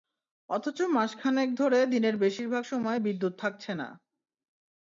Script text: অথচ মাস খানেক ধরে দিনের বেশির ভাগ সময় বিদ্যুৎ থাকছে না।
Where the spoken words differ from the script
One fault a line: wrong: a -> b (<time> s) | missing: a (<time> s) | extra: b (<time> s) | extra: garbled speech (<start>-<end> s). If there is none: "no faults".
no faults